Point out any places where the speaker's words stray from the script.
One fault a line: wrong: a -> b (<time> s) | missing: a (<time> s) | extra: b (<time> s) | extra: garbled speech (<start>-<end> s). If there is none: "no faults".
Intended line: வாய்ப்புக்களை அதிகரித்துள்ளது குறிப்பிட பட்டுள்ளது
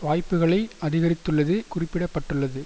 no faults